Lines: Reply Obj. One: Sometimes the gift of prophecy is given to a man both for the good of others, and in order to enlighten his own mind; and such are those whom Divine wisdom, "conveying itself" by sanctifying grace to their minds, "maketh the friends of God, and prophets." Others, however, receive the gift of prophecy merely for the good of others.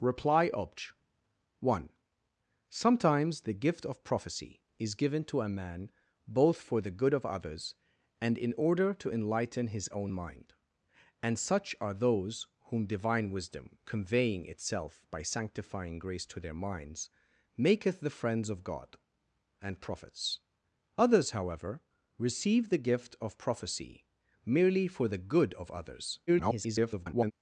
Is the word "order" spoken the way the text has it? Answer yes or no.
yes